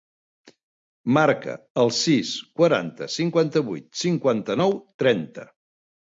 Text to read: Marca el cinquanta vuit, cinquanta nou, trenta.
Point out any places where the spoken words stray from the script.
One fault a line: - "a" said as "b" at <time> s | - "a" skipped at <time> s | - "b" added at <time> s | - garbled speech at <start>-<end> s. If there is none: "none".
- "sis quaranta" added at 2.0 s